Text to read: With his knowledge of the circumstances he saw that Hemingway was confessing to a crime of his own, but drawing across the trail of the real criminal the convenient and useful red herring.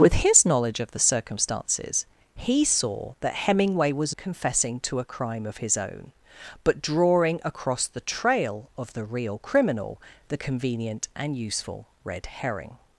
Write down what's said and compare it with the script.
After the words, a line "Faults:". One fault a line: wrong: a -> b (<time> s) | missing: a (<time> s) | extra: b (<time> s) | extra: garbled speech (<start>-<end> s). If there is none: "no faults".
With his knowledge of the circumstances he saw that Hemingway was confessing to a crime of his own, but drawing across the trail of the real criminal the convenient and useful red herring.
Faults:
no faults